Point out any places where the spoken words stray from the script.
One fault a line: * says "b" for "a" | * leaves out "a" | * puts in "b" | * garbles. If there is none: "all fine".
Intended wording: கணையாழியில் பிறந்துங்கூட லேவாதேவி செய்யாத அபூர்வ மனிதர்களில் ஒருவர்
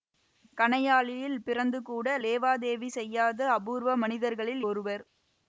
all fine